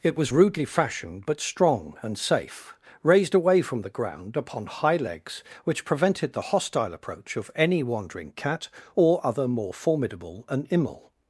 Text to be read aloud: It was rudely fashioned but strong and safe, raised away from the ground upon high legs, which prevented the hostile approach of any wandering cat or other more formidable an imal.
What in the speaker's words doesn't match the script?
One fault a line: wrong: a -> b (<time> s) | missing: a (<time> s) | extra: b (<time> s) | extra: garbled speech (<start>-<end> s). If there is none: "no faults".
no faults